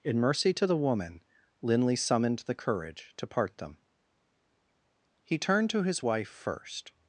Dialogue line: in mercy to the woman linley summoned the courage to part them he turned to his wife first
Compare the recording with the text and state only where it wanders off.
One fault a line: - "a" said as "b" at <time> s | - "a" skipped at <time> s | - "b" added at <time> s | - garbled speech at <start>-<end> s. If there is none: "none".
none